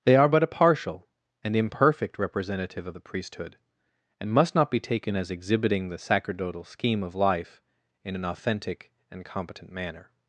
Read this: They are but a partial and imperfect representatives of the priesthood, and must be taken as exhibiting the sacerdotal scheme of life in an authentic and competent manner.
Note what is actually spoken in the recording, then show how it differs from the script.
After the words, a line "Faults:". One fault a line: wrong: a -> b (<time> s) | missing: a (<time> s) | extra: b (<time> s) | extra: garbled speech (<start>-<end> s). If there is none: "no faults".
They are but a partial and imperfect representative of the priesthood, and must not be taken as exhibiting the sacerdotal scheme of life in an authentic and competent manner.
Faults:
wrong: representatives -> representative (2.2 s)
extra: not (4.5 s)